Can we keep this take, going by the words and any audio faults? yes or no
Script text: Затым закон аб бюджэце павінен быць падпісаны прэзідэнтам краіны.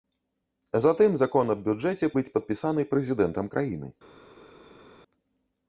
no